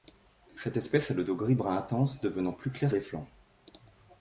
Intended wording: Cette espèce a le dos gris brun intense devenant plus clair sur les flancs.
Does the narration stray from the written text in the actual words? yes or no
yes